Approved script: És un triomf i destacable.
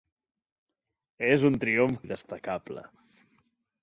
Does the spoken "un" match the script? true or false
true